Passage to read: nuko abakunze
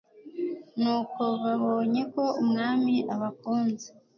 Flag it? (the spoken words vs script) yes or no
yes